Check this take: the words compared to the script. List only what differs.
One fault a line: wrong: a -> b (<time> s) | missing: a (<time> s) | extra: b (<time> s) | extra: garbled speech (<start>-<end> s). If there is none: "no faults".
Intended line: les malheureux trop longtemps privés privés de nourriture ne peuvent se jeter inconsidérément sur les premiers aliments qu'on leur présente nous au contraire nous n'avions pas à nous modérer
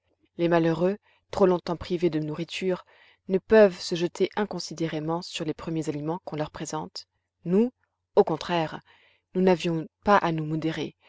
missing: privés (2.1 s)